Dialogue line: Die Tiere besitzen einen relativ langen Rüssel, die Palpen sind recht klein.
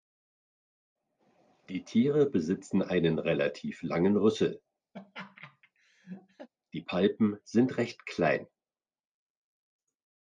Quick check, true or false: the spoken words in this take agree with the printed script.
true